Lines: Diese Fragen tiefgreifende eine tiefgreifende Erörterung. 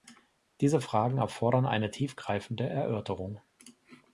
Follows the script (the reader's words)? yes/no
no